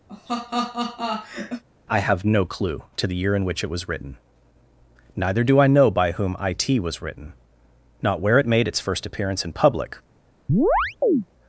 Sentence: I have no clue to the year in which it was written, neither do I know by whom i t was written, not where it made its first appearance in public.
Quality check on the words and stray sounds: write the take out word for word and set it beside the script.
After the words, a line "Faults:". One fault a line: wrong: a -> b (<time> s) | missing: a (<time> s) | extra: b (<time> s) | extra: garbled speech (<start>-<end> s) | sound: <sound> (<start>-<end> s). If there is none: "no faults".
I have no clue to the year in which it was written, neither do I know by whom i t was written, not where it made its first appearance in public.
Faults:
sound: laugh (0.1-1.6 s)
sound: chirp (10.5-11.3 s)